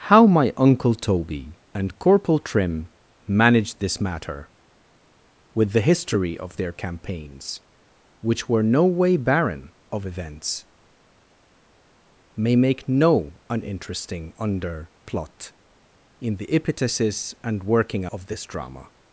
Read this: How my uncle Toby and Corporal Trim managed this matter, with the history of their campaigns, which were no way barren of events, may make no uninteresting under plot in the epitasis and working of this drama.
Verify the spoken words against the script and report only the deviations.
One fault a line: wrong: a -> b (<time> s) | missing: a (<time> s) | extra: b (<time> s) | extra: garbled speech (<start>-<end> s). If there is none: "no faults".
no faults